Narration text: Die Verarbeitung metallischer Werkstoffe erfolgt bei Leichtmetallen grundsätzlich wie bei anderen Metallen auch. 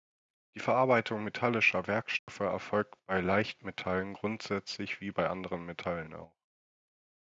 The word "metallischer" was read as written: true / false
true